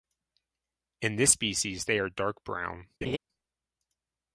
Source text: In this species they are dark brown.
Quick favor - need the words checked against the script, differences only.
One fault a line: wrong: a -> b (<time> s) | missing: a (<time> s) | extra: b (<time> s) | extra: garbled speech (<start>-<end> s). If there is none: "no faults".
no faults